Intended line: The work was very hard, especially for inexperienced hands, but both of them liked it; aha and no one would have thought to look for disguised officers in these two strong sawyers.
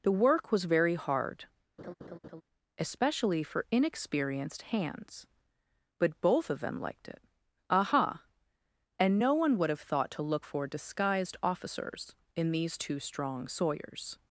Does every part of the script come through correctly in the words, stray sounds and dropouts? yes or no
no